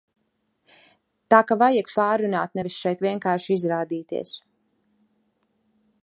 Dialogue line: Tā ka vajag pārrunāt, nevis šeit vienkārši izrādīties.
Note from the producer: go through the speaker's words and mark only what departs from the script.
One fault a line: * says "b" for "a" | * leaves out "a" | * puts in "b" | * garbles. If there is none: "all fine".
all fine